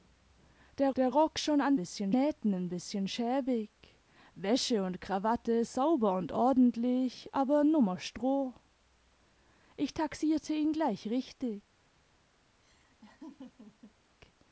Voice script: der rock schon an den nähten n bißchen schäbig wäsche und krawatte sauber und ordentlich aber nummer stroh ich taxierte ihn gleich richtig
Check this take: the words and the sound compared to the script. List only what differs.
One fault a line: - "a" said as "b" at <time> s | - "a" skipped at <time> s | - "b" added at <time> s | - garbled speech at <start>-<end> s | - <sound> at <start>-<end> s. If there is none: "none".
- "der" added at 1.0 s
- "den" said as "bißchen" at 1.7 s
- laugh at 12.6-14.0 s